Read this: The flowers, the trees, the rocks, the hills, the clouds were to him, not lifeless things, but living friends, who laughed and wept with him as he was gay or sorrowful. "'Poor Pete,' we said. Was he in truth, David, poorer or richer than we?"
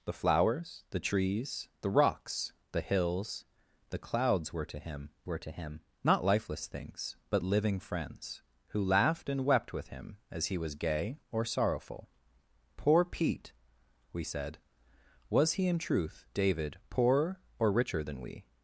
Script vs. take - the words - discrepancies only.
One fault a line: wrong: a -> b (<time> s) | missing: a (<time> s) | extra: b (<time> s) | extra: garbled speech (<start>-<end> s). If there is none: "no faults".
extra: were to him (5.2 s)